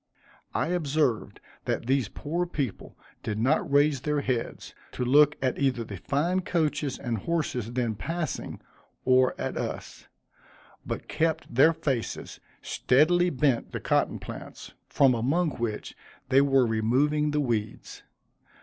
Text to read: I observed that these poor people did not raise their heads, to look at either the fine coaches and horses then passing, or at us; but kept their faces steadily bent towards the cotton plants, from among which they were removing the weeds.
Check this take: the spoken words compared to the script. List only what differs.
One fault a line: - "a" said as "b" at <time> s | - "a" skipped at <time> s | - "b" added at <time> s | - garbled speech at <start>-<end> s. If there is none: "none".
- "towards" skipped at 13.7 s